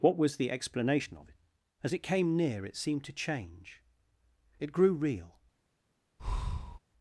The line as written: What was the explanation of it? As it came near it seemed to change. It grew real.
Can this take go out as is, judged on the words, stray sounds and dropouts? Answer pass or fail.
fail